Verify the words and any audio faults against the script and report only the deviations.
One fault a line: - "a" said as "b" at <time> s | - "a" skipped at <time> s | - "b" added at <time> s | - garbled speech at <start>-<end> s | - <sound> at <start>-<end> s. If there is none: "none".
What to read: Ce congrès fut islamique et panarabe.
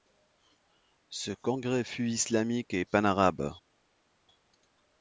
none